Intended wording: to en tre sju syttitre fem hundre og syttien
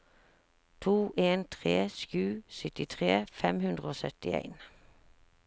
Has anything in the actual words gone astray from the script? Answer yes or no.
no